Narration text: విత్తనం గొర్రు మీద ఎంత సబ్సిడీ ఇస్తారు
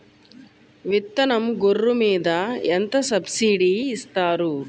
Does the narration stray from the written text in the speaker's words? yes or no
no